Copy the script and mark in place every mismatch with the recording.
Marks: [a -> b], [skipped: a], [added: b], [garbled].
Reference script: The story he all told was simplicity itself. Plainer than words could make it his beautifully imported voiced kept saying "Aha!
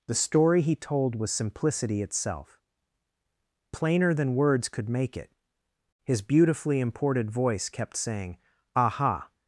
The story he [skipped: all] told was simplicity itself. Plainer than words could make it his beautifully imported [voiced -> voice] kept saying "Aha!